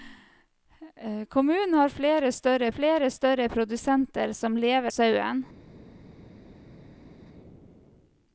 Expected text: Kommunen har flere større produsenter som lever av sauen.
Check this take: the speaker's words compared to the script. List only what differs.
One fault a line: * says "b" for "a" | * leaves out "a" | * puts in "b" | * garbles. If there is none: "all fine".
* puts in "flere større"
* leaves out "av"